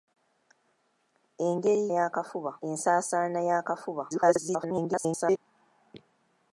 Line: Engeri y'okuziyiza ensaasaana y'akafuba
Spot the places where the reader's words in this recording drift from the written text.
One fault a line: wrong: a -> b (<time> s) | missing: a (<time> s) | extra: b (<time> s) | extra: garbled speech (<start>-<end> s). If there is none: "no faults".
wrong: y'okuziyiza -> y'akafuba (2.0 s)
extra: garbled speech (4.1-5.4 s)